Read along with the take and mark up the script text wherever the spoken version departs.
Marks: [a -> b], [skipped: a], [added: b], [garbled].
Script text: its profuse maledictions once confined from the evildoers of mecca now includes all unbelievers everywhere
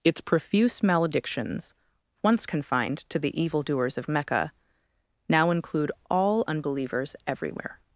its profuse maledictions once confined [from -> to] the evildoers of mecca now [includes -> include] all unbelievers everywhere